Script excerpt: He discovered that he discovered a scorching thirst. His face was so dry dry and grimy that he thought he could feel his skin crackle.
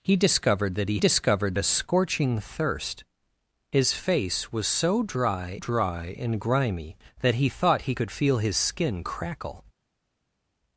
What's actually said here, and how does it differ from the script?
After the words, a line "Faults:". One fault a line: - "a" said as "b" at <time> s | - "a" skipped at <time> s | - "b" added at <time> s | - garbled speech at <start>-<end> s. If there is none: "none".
He discovered that he discovered a scorching thirst. His face was so dry dry and grimy that he thought he could feel his skin crackle.
Faults:
none